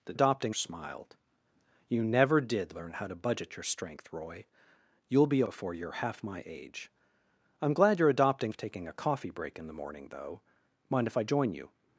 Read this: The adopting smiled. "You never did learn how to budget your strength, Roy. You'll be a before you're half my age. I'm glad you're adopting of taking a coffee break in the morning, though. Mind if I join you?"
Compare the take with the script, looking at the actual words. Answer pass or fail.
pass